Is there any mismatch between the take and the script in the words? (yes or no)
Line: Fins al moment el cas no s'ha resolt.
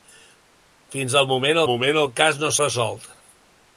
yes